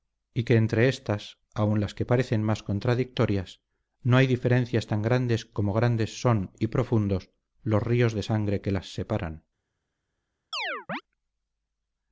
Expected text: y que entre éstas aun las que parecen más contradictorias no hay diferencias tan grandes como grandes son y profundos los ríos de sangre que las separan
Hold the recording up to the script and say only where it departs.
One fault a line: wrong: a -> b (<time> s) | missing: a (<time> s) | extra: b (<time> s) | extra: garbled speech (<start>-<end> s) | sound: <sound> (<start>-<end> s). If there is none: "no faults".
sound: chirp (10.5-11.0 s)